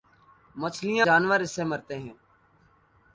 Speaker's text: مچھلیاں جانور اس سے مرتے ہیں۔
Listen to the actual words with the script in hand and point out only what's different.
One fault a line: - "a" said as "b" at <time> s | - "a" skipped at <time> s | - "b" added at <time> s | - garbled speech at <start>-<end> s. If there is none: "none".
none